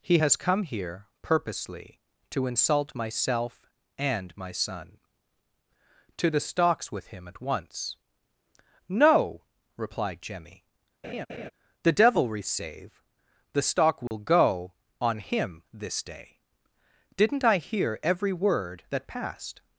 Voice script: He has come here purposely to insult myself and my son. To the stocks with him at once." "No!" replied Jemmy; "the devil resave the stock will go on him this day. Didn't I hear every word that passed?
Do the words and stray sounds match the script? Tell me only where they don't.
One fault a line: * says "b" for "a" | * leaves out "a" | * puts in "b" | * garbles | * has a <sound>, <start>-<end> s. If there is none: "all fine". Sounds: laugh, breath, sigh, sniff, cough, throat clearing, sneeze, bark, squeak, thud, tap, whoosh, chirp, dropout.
* has a laugh, 11.0-11.5 s
* has a dropout, 14.1-14.1 s